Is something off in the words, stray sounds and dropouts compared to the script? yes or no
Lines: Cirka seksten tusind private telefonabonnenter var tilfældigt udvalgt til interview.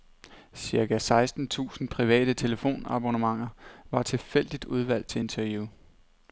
no